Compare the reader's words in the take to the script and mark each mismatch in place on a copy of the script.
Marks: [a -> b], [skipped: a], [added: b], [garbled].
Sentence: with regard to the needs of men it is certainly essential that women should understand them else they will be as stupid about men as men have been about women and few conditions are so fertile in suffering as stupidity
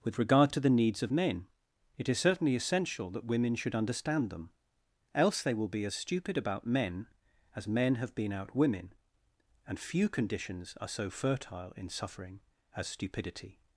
with regard to the needs of men it is certainly essential that women should understand them else they will be as stupid about men as men have been [about -> out] women and few conditions are so fertile in suffering as stupidity